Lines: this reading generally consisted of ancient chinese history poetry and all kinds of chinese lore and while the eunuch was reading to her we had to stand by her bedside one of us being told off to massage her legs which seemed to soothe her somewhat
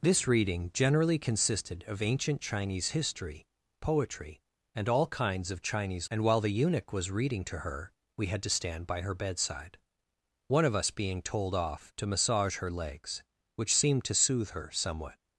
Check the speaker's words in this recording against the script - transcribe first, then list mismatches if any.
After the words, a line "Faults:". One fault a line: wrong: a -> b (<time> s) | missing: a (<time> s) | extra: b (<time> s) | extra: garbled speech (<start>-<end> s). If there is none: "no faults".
this reading generally consisted of ancient chinese history poetry and all kinds of chinese and while the eunuch was reading to her we had to stand by her bedside one of us being told off to massage her legs which seemed to soothe her somewhat
Faults:
missing: lore (6.1 s)